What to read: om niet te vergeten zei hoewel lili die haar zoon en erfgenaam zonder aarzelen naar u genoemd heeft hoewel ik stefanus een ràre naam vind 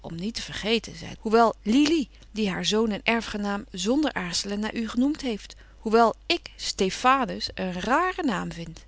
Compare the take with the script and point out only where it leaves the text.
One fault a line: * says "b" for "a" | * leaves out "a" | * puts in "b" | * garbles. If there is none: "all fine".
all fine